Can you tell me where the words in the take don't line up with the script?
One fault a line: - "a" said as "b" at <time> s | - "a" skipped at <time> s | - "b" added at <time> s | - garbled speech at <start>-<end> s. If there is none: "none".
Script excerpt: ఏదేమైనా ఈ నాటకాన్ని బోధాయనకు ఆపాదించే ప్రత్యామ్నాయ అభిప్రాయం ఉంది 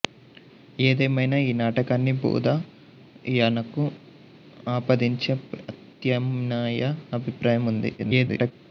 - garbled speech at 8.0-8.5 s